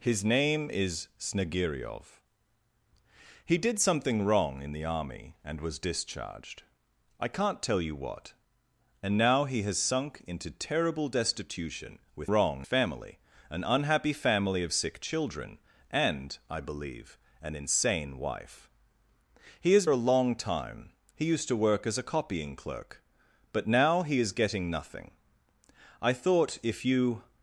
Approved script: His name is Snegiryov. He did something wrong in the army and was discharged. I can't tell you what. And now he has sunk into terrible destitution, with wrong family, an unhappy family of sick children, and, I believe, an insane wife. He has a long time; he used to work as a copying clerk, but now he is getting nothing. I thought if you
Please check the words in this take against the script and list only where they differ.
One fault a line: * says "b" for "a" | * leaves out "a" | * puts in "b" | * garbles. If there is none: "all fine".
all fine